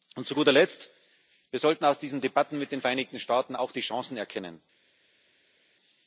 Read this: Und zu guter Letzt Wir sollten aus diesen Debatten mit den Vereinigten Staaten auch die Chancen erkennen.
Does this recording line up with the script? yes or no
yes